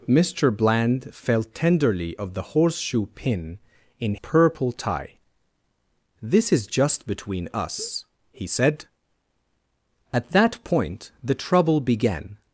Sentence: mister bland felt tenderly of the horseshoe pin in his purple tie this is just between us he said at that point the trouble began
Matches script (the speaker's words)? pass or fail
fail